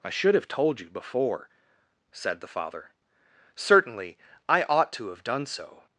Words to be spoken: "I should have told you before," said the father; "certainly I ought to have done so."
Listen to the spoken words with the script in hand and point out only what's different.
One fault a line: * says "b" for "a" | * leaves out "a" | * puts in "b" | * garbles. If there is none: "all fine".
all fine